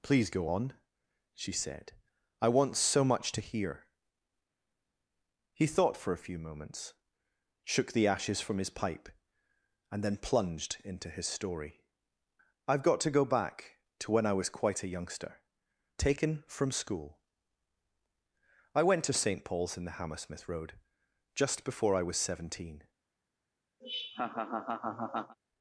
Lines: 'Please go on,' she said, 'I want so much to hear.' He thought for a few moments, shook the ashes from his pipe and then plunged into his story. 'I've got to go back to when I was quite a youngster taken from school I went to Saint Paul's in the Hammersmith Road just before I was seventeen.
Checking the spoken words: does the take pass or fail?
pass